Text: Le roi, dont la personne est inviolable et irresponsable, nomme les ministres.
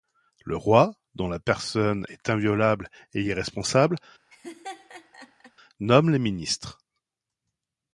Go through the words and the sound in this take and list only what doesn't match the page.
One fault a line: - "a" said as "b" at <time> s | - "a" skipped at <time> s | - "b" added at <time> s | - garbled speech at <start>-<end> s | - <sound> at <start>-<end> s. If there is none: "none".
- laugh at 4.3-5.5 s